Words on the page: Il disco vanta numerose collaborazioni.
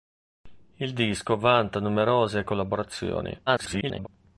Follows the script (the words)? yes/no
no